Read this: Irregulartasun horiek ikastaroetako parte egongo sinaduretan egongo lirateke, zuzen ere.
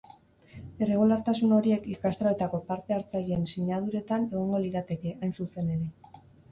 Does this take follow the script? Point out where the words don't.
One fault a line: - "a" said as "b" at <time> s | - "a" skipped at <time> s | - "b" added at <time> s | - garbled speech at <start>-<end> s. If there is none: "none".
- "egongo" said as "hartzaileen" at 3.0 s
- "hain" added at 5.2 s